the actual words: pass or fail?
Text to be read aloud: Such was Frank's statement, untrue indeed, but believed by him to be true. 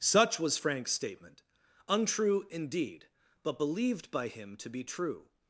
pass